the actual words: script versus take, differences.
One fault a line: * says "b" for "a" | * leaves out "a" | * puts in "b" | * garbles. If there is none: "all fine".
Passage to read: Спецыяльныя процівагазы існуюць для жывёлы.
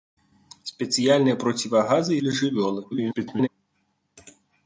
* leaves out "існуюць"
* garbles